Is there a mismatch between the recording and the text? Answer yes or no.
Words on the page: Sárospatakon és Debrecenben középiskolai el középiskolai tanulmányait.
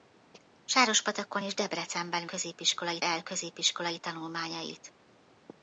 no